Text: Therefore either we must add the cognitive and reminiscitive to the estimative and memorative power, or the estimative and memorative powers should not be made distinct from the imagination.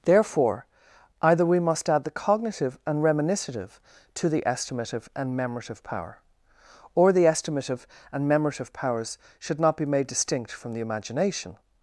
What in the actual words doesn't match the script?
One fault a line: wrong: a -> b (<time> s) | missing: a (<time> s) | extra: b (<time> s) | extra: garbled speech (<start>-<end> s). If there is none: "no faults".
no faults